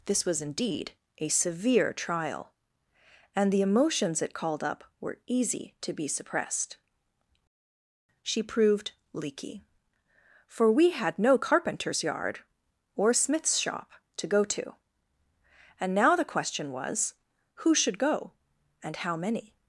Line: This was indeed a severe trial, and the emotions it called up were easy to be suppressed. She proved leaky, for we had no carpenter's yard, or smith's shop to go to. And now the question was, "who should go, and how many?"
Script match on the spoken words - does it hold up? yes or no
yes